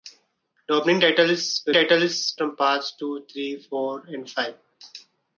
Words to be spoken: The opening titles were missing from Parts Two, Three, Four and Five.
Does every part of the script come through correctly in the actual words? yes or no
no